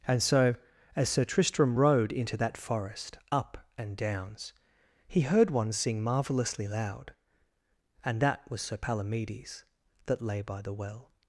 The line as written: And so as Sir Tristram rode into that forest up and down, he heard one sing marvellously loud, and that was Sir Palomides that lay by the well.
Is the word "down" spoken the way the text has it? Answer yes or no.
no